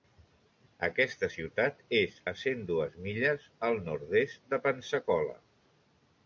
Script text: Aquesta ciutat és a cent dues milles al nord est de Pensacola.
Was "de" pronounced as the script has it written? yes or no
yes